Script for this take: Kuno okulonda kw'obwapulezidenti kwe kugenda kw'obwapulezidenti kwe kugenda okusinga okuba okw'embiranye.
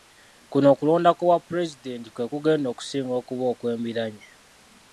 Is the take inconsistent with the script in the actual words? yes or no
yes